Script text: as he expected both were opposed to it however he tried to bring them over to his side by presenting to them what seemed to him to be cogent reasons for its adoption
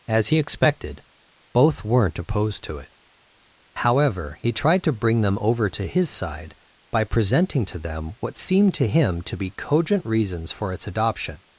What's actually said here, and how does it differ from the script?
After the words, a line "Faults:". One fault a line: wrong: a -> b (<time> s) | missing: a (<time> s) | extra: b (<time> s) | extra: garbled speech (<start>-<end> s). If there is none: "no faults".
as he expected both weren't opposed to it however he tried to bring them over to his side by presenting to them what seemed to him to be cogent reasons for its adoption
Faults:
wrong: were -> weren't (1.8 s)